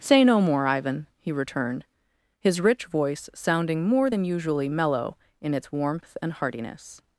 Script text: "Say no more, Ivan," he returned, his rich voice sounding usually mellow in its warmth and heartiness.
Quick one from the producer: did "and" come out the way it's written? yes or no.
yes